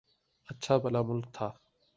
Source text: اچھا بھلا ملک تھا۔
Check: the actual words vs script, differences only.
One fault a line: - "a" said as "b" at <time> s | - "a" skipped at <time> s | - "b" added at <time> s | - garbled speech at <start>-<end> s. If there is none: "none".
none